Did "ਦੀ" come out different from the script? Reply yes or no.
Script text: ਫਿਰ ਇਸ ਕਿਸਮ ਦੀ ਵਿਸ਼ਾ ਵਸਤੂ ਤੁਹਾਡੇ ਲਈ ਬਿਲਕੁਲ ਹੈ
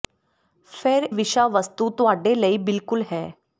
yes